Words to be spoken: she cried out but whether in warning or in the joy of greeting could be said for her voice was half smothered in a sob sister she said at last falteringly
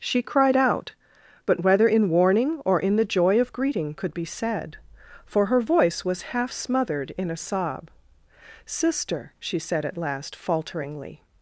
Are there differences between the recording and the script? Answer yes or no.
no